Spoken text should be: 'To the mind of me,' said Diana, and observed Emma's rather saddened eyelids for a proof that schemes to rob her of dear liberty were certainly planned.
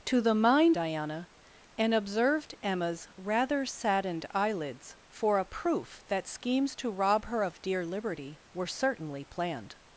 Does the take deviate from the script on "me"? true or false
true